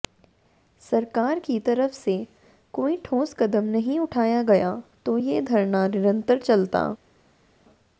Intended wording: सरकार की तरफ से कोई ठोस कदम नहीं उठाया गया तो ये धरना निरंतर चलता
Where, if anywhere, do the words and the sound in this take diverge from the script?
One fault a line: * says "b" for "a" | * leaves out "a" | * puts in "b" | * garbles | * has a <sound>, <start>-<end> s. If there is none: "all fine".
all fine